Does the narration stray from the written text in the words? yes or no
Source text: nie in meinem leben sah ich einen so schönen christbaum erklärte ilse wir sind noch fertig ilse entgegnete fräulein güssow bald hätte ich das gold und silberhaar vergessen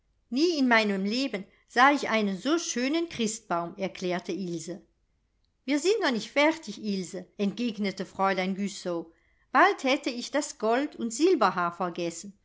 yes